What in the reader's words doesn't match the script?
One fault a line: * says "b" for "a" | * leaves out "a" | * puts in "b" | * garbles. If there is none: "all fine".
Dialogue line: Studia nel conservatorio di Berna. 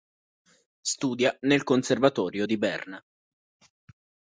all fine